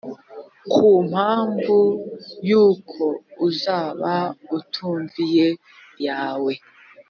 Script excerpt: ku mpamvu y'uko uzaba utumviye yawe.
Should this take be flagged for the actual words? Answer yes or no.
no